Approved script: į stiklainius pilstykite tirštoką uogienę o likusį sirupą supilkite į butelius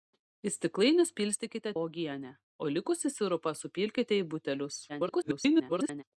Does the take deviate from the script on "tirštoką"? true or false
true